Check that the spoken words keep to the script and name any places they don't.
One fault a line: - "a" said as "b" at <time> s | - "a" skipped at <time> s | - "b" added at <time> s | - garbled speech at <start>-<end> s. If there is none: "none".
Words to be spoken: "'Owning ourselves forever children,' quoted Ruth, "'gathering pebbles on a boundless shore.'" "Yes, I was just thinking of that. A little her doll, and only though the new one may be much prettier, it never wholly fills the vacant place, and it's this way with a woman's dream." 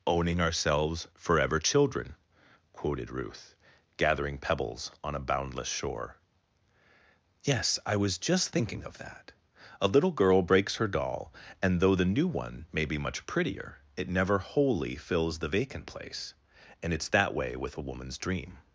- "girl breaks" added at 10.1 s
- "only" skipped at 11.8 s
- "this" said as "that" at 17.1 s